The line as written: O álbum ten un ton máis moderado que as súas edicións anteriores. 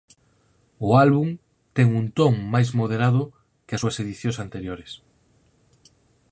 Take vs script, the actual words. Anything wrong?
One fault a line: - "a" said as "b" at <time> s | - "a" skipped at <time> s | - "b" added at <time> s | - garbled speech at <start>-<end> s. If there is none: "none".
none